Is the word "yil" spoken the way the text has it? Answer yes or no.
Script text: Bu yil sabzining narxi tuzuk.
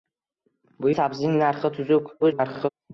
no